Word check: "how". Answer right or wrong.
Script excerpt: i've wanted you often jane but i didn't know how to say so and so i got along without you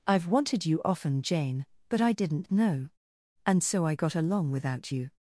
wrong